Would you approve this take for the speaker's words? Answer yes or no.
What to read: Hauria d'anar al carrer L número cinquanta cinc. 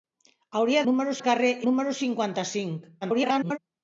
no